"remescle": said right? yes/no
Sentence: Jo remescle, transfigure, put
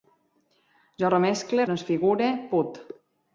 yes